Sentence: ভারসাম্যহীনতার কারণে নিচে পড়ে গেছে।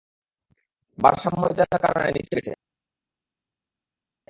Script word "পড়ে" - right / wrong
wrong